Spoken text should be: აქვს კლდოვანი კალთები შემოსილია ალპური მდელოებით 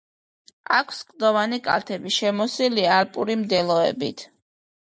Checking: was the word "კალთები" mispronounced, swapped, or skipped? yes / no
no